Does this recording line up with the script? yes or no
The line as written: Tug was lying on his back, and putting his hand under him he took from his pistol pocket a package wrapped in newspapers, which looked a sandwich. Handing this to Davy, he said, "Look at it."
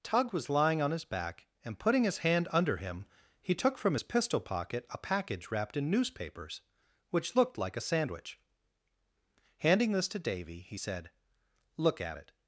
no